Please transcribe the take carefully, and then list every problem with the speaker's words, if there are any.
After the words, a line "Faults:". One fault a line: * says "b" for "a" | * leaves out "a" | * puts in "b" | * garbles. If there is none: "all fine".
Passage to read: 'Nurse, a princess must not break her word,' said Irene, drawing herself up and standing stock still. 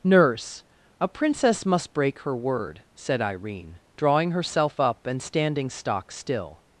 'Nurse, a princess must break her word,' said Irene, drawing herself up and standing stock still.
Faults:
* leaves out "not"